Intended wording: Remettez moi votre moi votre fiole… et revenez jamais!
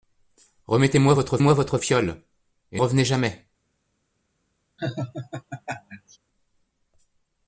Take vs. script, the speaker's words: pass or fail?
pass